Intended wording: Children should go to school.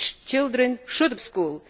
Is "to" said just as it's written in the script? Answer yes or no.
no